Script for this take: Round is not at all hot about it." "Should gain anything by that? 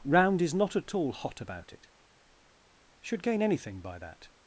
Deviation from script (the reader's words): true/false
false